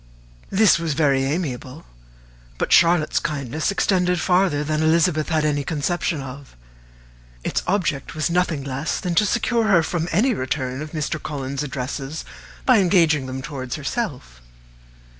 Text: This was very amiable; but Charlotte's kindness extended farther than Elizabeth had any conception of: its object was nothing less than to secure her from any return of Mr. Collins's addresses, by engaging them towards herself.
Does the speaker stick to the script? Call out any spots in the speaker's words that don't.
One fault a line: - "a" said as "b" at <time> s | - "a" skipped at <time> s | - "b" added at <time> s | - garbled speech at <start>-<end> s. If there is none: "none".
none